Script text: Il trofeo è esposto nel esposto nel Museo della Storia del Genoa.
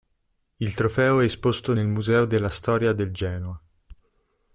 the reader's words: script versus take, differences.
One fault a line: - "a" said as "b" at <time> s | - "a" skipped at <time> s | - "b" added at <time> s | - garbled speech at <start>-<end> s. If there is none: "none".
- "esposto nel" skipped at 1.9 s